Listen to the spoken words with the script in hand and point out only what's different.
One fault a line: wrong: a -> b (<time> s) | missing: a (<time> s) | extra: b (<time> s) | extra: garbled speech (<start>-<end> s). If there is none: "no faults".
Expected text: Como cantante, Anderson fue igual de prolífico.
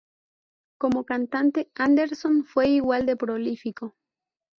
no faults